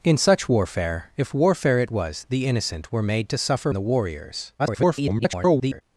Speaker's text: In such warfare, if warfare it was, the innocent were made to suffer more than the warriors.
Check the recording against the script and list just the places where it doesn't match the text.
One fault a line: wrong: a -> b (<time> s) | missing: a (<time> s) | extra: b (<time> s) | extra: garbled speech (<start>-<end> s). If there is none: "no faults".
missing: more than (3.7 s)
extra: garbled speech (4.6-5.8 s)